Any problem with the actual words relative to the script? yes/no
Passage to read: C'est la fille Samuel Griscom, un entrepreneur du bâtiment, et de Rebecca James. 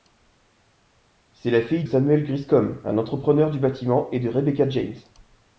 no